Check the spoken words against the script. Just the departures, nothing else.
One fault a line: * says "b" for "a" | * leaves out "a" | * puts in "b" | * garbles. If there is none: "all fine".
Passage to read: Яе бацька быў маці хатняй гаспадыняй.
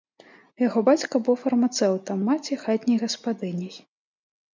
* says "Яго" for "Яе"
* puts in "фармацэўтам"